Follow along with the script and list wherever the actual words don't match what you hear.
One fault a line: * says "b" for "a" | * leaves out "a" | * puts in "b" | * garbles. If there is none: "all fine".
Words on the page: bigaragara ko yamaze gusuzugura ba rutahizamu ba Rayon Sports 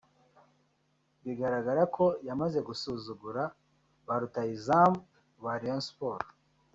all fine